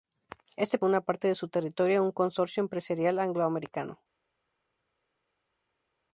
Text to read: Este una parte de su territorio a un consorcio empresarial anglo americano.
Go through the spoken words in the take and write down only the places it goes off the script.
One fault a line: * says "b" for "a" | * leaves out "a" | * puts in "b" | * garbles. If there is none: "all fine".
all fine